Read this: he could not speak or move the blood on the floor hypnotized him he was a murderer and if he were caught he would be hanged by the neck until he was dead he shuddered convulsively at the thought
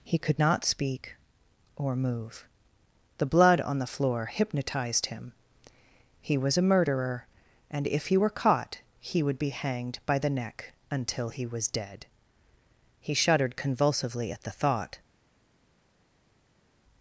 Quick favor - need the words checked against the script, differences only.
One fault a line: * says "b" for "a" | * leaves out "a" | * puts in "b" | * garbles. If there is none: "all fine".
all fine